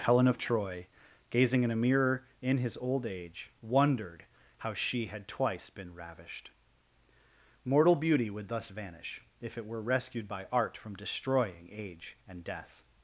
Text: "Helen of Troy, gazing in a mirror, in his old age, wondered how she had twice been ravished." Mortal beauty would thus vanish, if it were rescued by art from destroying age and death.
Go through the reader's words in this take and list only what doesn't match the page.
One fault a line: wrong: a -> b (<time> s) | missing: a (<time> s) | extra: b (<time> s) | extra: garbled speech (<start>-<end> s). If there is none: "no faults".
no faults